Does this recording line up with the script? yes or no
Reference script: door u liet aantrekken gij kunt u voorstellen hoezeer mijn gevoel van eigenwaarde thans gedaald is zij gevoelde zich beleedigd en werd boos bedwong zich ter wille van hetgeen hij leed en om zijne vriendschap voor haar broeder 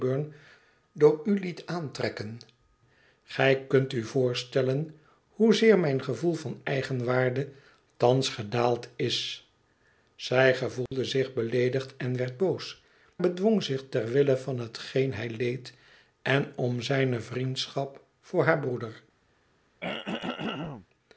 yes